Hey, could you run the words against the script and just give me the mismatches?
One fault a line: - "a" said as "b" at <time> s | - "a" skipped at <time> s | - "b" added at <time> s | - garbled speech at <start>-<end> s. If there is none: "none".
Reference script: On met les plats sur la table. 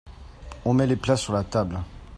none